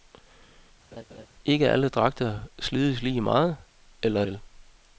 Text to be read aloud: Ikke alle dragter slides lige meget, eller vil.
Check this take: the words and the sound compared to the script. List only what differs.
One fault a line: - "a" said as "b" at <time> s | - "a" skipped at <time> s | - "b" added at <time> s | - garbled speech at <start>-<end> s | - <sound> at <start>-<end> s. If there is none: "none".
- laugh at 0.9-1.3 s